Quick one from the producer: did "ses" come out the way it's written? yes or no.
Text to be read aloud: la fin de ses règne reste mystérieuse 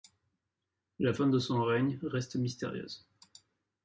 no